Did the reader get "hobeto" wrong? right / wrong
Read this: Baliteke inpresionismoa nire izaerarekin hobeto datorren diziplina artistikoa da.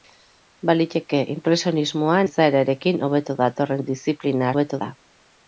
right